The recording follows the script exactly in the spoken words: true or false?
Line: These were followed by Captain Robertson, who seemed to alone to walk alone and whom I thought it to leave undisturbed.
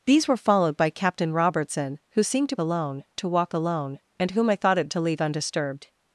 true